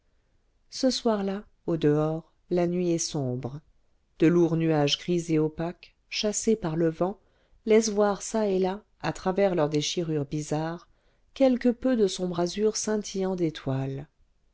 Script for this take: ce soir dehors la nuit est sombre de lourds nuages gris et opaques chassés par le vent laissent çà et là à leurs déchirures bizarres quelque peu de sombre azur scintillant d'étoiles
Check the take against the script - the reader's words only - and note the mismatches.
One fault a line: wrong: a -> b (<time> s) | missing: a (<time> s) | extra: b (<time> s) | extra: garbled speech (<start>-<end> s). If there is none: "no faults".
extra: là au (1.2 s)
extra: voir (7.9 s)
extra: travers (9.1 s)